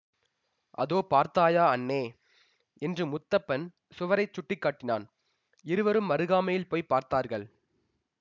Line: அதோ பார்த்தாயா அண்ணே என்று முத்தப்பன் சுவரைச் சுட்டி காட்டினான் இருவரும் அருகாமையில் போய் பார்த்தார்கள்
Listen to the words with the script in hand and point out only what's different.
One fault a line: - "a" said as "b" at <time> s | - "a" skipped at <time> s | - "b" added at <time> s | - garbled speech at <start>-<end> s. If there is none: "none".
none